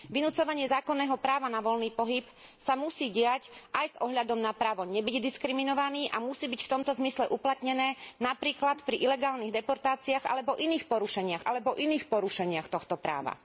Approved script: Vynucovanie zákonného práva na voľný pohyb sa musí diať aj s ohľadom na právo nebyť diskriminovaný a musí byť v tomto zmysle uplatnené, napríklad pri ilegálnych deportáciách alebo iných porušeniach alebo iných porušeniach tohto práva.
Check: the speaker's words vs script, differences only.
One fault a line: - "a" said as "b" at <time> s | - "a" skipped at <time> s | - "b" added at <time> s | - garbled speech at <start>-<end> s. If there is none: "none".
none